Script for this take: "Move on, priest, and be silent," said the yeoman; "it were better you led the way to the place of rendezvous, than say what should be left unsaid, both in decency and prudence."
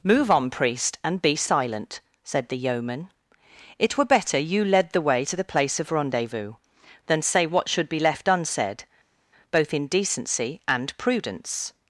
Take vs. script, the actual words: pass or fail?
pass